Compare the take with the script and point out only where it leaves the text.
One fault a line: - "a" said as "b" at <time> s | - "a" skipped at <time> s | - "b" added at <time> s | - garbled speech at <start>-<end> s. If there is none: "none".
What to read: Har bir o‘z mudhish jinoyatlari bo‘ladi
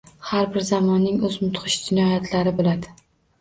- "zamonning" added at 0.7 s